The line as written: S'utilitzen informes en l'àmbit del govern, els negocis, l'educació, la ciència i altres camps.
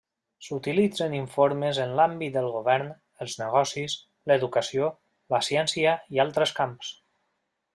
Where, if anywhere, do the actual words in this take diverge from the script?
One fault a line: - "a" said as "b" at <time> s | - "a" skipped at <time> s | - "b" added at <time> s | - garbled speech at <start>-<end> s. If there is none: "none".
none